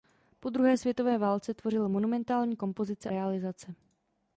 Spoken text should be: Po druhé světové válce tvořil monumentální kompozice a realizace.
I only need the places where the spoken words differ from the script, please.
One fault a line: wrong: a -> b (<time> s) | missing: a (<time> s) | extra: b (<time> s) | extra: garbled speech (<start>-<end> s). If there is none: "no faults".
missing: a (3.1 s)